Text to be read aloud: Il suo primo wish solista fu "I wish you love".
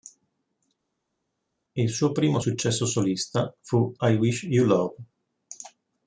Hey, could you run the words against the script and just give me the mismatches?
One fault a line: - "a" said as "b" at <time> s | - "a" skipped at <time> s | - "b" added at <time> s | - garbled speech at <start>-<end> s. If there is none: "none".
- "wish" said as "successo" at 2.4 s